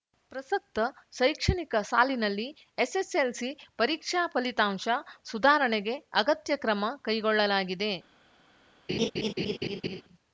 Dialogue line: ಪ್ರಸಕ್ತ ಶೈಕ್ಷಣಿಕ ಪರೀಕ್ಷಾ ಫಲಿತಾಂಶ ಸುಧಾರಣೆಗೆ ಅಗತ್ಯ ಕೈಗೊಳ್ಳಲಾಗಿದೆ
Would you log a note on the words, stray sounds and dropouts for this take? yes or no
yes